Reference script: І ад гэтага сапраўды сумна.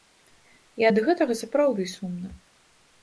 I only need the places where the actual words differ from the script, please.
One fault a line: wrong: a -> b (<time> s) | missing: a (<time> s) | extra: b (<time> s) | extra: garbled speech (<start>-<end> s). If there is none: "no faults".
no faults